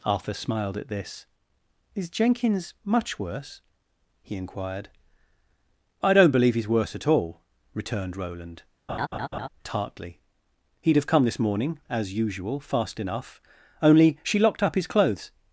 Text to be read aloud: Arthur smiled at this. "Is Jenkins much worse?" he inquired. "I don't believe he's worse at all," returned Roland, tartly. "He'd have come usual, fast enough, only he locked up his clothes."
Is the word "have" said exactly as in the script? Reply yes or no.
yes